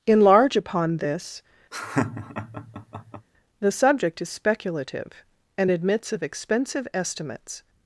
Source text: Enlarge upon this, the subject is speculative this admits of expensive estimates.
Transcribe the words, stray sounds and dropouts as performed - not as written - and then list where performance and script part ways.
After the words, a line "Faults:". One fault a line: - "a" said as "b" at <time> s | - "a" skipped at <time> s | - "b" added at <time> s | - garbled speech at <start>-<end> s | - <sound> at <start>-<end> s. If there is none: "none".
Enlarge upon this, the subject is speculative and admits of expensive estimates.
Faults:
- laugh at 1.7-3.3 s
- "this" said as "and" at 5.6 s